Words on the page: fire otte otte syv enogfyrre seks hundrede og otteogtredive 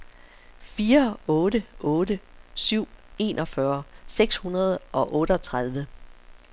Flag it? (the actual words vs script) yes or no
no